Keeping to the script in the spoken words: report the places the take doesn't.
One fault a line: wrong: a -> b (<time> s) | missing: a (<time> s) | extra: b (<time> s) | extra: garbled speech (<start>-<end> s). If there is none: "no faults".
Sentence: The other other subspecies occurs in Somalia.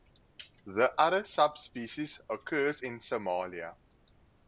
missing: other (1.2 s)